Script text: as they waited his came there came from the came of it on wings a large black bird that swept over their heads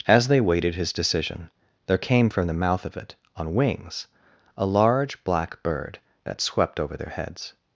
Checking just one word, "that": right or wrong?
right